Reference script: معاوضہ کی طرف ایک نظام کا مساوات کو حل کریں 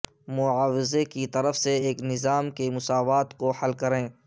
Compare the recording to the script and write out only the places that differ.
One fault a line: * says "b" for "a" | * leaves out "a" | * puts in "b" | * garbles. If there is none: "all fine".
* puts in "سے"
* says "کے" for "کا"